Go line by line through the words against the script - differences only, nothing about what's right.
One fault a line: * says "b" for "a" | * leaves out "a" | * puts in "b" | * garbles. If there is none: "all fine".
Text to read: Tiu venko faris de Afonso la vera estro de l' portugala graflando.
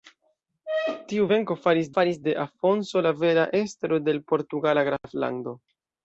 * puts in "faris"